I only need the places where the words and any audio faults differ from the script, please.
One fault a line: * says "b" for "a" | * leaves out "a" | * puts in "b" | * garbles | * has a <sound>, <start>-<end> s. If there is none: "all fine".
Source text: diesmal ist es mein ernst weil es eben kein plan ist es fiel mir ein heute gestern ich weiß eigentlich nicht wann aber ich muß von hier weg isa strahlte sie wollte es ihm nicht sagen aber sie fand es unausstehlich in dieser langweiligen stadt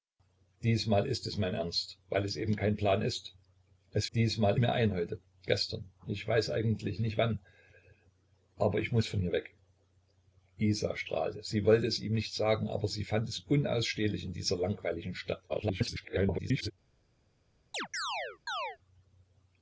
* says "diesmal" for "fiel"
* garbles
* has a chirp, 17.7-18.8 s